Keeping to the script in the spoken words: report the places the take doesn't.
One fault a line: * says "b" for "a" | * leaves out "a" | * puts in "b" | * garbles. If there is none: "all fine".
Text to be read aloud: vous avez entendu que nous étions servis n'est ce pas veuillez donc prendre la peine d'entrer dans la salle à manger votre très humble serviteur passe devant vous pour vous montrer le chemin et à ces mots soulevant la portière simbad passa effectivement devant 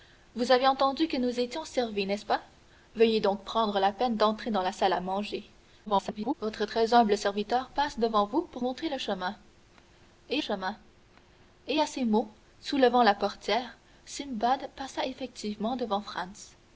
* garbles
* leaves out "vous"
* puts in "chemin et"